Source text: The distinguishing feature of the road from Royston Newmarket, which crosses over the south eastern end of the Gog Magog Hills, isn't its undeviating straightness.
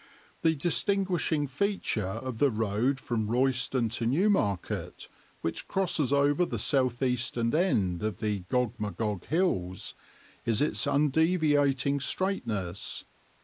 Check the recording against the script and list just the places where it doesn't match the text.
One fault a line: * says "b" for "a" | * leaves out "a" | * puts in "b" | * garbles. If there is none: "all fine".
* puts in "to"
* says "is" for "isn't"